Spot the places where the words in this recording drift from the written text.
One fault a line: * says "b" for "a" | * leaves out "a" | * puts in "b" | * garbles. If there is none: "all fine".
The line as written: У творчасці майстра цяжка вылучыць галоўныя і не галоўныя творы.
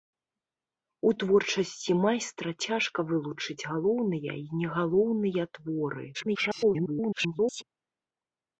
* garbles